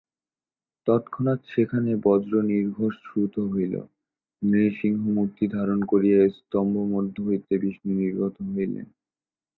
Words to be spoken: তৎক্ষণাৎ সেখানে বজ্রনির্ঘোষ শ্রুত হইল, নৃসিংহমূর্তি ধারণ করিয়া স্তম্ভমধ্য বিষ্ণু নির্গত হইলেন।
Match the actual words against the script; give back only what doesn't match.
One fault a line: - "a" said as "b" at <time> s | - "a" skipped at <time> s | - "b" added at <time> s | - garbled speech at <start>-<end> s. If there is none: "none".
- "হইতে" added at 7.2 s